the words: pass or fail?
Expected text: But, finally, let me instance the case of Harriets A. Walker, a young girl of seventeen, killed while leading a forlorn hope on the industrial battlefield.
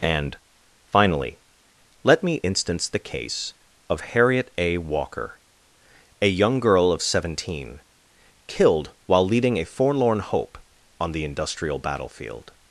fail